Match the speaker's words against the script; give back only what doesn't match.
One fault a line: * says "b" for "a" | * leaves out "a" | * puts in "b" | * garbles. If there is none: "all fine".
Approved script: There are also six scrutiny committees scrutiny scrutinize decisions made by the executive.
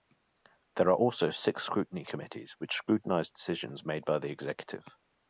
* says "which" for "scrutiny"